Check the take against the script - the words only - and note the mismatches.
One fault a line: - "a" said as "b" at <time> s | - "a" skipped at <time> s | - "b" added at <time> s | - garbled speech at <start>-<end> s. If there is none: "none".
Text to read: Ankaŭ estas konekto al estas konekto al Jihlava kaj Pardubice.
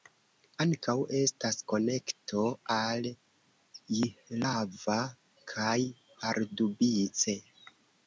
- "estas konekto al" skipped at 3.1 s